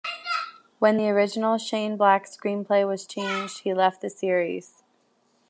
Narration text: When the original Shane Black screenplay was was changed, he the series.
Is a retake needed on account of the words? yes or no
yes